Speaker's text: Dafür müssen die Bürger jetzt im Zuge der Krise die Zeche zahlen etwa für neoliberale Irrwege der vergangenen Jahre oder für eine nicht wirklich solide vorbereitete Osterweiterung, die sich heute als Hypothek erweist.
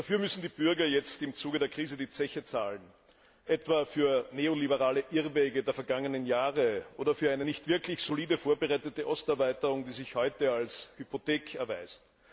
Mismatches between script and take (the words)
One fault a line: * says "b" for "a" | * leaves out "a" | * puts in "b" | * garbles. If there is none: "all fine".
all fine